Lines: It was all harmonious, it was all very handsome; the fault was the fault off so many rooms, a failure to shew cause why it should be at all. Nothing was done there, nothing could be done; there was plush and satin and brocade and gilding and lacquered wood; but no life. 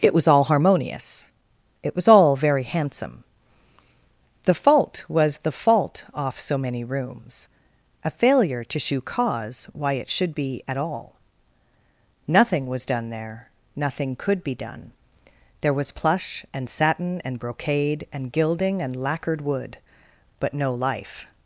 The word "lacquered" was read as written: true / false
true